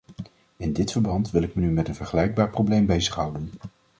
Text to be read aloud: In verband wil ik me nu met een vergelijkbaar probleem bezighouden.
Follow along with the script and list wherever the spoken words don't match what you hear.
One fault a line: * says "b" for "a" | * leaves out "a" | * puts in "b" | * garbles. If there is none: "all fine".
* puts in "dit"